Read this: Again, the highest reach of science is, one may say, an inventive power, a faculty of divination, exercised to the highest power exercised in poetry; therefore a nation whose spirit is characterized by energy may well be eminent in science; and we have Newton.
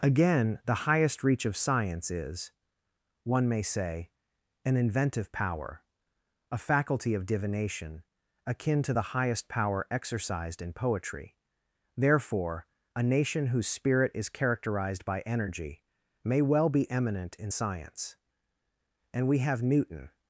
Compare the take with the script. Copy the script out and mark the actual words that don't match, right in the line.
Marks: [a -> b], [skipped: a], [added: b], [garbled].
Again, the highest reach of science is, one may say, an inventive power, a faculty of divination, [exercised -> akin] to the highest power exercised in poetry; therefore a nation whose spirit is characterized by energy may well be eminent in science; and we have Newton.